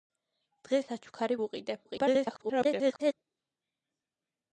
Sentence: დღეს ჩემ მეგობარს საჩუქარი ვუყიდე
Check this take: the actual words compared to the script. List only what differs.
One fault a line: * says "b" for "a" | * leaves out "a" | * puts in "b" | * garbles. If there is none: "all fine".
* leaves out "ჩემ მეგობარს"
* garbles